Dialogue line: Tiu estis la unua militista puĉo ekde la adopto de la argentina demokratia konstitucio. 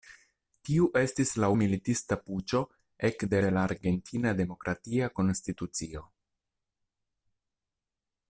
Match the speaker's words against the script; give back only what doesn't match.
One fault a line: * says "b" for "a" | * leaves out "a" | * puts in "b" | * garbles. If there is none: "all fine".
* leaves out "unua"
* leaves out "la adopto"